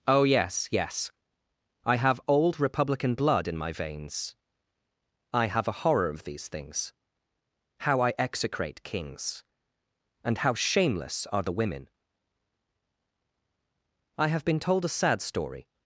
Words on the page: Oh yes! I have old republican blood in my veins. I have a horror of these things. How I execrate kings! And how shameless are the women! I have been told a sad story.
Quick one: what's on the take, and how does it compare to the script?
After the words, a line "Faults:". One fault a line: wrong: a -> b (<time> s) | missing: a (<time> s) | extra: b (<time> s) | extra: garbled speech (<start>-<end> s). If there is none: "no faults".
Oh yes yes! I have old republican blood in my veins. I have a horror of these things. How I execrate kings! And how shameless are the women! I have been told a sad story.
Faults:
extra: yes (0.7 s)